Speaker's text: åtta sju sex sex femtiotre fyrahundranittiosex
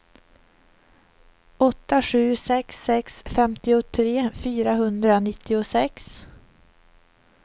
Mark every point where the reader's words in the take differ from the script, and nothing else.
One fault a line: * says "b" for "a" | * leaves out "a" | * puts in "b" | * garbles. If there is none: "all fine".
all fine